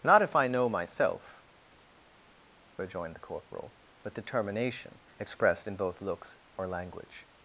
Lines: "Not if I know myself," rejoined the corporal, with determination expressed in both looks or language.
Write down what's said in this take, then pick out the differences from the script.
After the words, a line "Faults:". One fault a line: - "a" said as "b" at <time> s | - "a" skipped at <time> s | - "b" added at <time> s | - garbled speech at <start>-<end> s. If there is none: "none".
"Not if I know myself," rejoined the corporal, with determination expressed in both looks or language.
Faults:
none